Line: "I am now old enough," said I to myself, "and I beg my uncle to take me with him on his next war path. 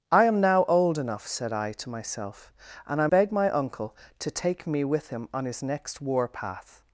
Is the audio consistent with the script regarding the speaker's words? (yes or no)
yes